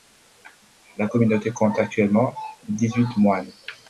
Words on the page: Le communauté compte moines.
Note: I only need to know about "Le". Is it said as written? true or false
false